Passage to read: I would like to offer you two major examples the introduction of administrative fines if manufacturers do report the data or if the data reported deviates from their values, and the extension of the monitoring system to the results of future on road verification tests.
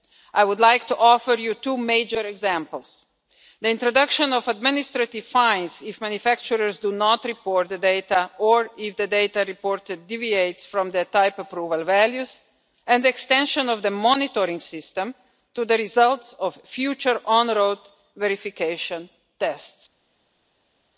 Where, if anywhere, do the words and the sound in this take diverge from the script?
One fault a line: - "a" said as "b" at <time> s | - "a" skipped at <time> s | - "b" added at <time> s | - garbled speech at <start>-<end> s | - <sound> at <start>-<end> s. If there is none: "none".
- "not" added at 6.9 s
- "type approval" added at 11.1 s